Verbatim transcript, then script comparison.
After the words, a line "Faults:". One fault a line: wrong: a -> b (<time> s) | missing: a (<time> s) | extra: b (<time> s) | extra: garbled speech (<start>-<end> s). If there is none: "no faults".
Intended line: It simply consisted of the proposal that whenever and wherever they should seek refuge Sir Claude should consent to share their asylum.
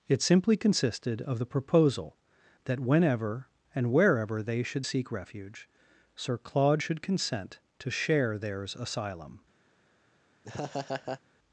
It simply consisted of the proposal that whenever and wherever they should seek refuge Sir Claude should consent to share theirs asylum.
Faults:
wrong: their -> theirs (8.4 s)